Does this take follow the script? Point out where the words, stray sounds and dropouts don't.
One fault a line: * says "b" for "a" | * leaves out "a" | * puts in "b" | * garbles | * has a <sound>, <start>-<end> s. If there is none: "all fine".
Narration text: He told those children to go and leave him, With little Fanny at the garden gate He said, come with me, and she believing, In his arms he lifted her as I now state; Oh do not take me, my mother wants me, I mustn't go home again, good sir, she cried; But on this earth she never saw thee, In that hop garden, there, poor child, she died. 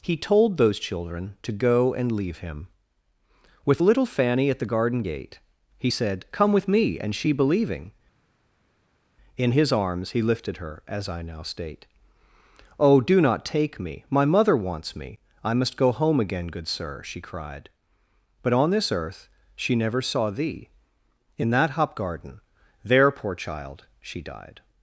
* says "must" for "mustn't"